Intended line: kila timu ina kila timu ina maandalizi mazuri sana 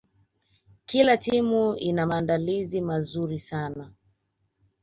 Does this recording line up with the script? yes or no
no